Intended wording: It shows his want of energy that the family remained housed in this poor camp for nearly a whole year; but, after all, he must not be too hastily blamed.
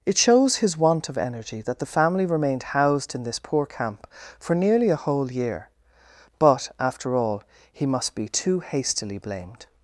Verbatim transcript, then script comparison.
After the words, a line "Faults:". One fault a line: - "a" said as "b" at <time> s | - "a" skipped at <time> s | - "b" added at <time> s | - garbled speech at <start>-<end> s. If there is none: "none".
It shows his want of energy that the family remained housed in this poor camp for nearly a whole year; but, after all, he must be too hastily blamed.
Faults:
- "not" skipped at 8.1 s